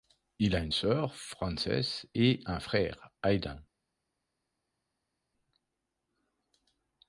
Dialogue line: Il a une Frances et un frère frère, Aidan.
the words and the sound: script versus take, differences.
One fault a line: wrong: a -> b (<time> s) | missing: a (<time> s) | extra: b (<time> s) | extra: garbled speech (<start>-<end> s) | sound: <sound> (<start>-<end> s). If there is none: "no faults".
extra: sœur (0.7 s)
missing: frère (3.1 s)